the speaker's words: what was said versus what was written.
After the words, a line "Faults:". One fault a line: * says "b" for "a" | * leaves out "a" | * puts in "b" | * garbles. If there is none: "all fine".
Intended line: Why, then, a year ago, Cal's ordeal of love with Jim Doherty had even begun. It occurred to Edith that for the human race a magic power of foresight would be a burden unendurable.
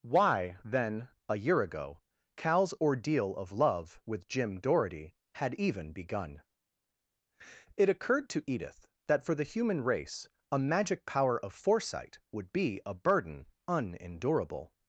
Why, then, a year ago, Cal's ordeal of love with Jim Doherty had even begun. It occurred to Edith that for the human race a magic power of foresight would be a burden unendurable.
Faults:
all fine